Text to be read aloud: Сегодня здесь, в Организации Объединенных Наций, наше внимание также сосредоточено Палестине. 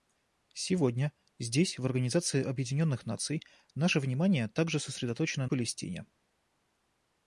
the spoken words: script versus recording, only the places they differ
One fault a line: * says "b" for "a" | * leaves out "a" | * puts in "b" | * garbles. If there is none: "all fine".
all fine